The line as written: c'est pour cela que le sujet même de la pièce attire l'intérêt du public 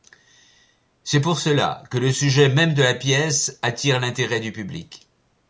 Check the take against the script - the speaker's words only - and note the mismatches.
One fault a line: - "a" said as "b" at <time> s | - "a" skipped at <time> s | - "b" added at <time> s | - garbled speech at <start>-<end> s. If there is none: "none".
none